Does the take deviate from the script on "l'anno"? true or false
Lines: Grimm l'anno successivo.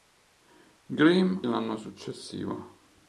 false